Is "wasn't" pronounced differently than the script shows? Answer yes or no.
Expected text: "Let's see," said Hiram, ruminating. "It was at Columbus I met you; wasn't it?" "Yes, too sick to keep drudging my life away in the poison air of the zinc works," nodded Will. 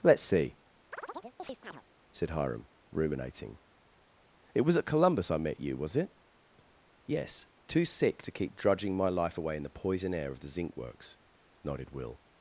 yes